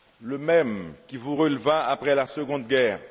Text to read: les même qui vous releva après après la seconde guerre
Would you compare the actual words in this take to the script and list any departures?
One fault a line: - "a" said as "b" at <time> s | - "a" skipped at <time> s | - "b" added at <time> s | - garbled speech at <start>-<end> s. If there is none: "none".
- "les" said as "le" at 0.2 s
- "après" skipped at 2.2 s